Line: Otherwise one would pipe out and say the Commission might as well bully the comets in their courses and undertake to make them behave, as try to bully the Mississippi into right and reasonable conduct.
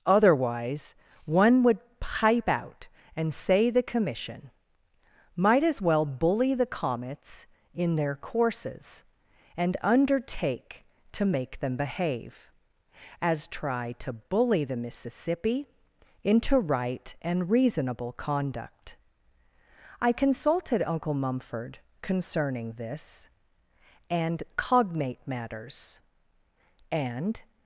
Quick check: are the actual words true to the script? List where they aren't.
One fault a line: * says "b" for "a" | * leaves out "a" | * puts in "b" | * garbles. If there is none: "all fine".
* puts in "I consulted Uncle Mumford concerning this and cognate matters and"